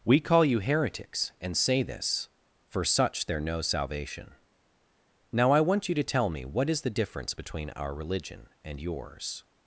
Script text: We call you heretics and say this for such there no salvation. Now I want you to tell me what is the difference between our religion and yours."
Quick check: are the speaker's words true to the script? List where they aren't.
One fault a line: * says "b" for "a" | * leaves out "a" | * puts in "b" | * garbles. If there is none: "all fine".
all fine